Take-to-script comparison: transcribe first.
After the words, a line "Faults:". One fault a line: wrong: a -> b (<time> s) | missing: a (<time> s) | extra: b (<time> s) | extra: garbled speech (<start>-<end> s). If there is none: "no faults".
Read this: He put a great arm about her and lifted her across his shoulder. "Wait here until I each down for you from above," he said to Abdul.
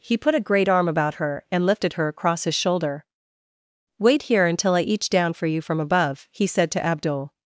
He put a great arm about her and lifted her across his shoulder. "Wait here until I each down for you from above," he said to Abdul.
Faults:
no faults